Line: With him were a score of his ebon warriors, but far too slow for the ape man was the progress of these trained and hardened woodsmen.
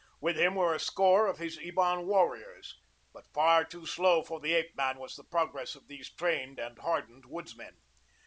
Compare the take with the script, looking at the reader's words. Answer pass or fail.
pass